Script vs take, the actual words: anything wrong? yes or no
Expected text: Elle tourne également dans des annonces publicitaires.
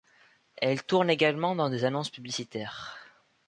no